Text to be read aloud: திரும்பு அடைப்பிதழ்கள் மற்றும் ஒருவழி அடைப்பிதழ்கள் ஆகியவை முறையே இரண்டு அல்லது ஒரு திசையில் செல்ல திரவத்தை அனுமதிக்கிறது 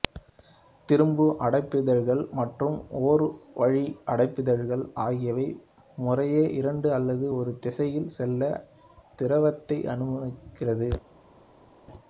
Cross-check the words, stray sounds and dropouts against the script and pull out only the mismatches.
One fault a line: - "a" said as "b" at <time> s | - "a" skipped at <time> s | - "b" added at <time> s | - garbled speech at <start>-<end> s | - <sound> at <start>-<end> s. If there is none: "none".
none